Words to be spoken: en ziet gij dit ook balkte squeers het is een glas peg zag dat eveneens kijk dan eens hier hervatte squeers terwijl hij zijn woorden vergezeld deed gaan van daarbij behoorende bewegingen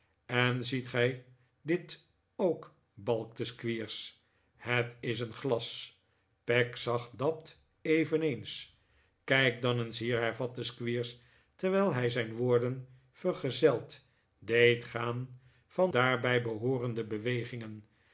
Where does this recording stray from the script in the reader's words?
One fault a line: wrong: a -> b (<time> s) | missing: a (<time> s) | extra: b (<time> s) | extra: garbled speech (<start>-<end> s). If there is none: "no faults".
no faults